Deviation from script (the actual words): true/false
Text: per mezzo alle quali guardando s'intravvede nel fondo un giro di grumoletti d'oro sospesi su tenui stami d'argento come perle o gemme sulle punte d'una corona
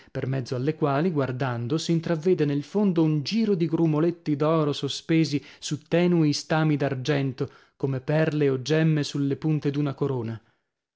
false